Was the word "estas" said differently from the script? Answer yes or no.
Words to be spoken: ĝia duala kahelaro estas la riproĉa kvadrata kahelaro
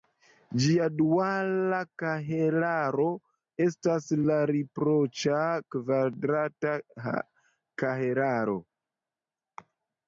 no